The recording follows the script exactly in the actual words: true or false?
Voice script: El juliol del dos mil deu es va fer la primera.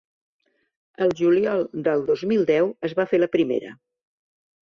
true